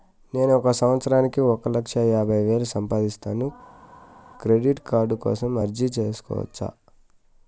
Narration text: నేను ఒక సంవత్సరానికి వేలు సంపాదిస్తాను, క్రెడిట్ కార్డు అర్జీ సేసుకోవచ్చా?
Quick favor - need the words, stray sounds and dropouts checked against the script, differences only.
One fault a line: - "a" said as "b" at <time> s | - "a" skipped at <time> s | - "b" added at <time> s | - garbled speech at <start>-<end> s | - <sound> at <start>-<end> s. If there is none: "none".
- "ఒక లక్ష యాభై" added at 1.4 s
- "కోసం" added at 5.1 s